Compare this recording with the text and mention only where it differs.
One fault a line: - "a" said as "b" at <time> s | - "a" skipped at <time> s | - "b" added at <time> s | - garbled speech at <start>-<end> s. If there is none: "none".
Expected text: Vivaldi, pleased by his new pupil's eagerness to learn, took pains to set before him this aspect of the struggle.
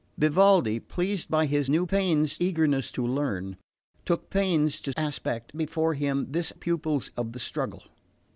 - "pupil's" said as "pains" at 1.9 s
- "set" said as "aspect" at 5.0 s
- "aspect" said as "pupil's" at 6.5 s